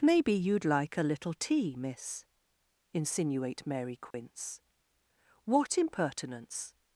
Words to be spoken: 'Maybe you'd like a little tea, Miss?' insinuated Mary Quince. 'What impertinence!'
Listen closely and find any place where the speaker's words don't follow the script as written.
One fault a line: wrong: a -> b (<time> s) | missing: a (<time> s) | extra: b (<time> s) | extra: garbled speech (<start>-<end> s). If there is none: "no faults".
wrong: insinuated -> insinuate (2.9 s)